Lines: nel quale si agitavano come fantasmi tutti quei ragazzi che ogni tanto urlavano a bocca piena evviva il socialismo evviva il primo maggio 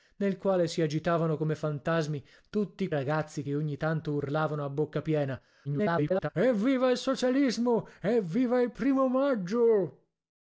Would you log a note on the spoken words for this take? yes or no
yes